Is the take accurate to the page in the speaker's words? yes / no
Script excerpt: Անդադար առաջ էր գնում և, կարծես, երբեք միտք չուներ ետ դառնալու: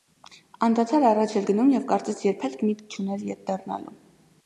yes